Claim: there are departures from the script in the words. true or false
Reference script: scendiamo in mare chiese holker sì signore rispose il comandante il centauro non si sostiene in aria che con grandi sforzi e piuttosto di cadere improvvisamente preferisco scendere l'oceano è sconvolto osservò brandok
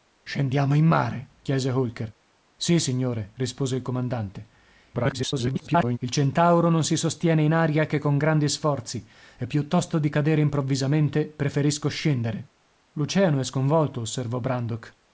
true